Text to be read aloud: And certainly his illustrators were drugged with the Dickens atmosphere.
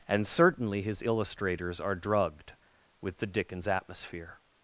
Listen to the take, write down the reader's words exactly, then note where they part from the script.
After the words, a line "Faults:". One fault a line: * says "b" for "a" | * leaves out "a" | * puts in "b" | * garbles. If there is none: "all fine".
And certainly his illustrators are drugged with the Dickens atmosphere.
Faults:
* says "are" for "were"